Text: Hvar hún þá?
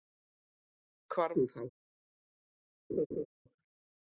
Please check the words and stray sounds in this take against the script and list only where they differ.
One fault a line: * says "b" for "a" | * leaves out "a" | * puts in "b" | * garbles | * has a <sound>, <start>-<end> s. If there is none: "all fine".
* has a laugh, 2.9-3.3 s